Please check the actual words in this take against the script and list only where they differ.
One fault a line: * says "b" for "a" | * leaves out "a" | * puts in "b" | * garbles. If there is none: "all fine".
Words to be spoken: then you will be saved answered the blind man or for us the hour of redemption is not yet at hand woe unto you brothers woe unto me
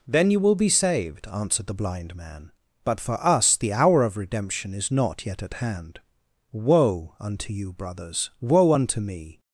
* says "but" for "or"